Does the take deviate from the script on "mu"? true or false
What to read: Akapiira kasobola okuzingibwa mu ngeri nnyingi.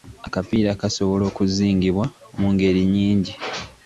false